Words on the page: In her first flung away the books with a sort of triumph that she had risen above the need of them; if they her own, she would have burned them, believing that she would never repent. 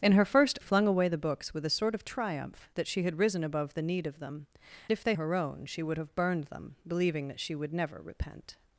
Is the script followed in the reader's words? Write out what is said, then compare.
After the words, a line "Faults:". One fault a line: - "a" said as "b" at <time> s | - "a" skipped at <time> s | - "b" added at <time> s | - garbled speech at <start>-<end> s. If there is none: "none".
In her first flung away the books with a sort of triumph that she had risen above the need of them; if they her own, she would have burned them, believing that she would never repent.
Faults:
none